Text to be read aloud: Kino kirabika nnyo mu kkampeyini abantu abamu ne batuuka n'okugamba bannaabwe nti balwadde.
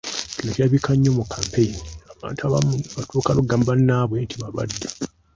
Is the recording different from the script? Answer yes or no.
no